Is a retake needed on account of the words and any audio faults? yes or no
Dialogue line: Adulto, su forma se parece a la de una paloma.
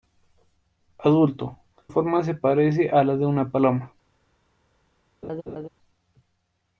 yes